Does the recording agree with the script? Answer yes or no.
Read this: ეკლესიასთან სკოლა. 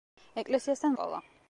yes